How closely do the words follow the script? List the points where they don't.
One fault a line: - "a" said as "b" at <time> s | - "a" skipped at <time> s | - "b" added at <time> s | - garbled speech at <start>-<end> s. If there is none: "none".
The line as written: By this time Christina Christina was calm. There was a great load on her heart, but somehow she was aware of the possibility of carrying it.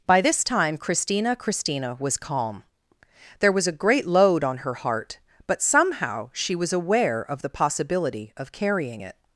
none